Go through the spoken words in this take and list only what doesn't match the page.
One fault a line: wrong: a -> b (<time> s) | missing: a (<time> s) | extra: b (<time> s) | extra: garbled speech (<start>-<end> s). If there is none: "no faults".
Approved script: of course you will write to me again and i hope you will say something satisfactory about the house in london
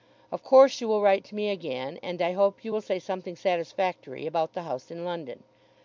no faults